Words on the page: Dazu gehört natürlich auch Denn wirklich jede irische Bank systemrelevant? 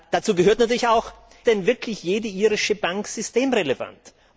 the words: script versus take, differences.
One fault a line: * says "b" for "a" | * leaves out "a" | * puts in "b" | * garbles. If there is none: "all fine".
all fine